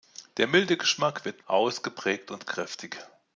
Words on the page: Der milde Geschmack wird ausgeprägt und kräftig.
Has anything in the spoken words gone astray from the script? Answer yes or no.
no